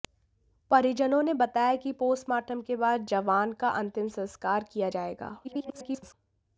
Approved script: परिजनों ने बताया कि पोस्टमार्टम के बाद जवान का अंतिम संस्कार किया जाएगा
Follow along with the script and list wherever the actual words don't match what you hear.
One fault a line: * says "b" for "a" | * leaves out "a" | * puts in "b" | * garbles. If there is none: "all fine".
* garbles